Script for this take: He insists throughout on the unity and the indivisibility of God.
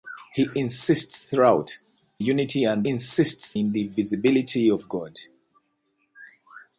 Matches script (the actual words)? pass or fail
fail